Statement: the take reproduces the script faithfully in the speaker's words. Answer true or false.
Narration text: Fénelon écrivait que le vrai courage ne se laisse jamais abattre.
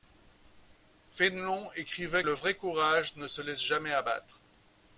false